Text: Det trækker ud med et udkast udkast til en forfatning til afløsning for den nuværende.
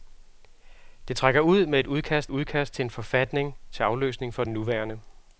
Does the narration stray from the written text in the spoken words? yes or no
no